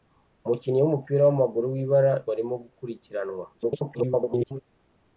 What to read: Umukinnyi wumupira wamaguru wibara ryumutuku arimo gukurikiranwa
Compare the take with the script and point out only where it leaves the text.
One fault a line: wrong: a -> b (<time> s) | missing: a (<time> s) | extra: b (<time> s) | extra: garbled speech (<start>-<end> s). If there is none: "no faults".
missing: ryumutuku (2.1 s)
extra: garbled speech (3.5-4.6 s)